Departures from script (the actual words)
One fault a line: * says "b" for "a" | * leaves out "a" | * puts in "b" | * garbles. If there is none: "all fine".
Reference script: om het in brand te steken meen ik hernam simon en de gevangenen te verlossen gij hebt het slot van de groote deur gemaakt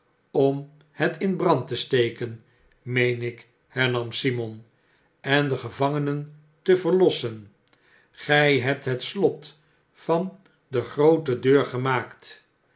all fine